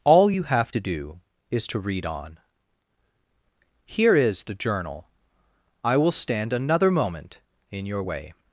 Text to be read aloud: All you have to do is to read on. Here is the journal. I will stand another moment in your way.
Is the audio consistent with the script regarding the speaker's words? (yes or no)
yes